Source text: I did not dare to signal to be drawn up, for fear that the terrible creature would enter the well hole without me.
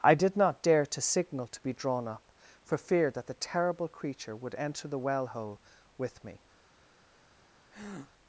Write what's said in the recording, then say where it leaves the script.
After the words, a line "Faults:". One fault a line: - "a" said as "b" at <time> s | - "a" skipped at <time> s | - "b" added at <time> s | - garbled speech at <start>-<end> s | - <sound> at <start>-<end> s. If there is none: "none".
I did not dare to signal to be drawn up, for fear that the terrible creature would enter the well hole with me.
Faults:
- "without" said as "with" at 6.0 s
- breath at 7.7-8.1 s